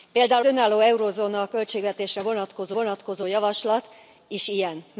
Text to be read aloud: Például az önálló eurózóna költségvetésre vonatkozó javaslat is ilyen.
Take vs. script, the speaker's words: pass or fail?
fail